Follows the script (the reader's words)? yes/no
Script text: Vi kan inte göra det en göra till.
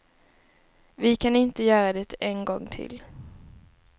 no